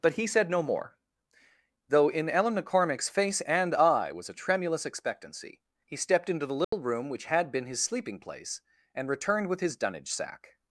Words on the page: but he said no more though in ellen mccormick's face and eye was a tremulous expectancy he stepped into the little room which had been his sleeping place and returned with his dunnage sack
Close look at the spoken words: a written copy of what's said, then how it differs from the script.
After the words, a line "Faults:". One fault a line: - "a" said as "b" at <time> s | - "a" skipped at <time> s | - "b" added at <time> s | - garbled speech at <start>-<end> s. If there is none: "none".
but he said no more though in ellen mccormick's face and eye was a tremulous expectancy he stepped into the little room which had been his sleeping place and returned with his dunnage sack
Faults:
none